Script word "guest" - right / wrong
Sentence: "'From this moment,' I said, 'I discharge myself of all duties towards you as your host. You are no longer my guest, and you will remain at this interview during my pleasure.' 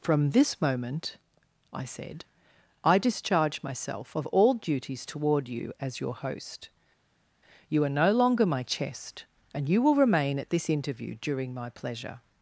wrong